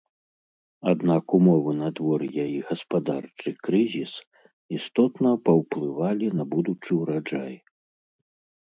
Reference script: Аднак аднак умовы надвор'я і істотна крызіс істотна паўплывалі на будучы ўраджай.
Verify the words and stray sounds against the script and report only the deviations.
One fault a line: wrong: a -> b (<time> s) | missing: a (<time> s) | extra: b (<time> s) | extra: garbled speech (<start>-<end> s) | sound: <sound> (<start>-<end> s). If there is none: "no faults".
missing: аднак (1.2 s)
wrong: істотна -> гаспадарчы (2.7 s)